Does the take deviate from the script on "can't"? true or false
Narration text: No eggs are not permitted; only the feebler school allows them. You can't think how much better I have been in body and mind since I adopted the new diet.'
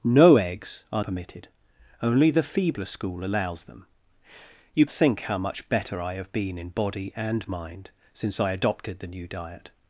true